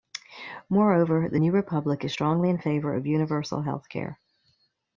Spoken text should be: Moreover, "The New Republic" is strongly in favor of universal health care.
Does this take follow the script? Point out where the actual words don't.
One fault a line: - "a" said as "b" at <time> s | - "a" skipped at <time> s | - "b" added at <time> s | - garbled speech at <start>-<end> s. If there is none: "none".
none